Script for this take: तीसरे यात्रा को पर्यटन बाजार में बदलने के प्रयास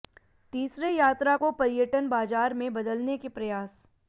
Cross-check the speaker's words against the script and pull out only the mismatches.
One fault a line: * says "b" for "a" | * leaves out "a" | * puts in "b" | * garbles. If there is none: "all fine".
all fine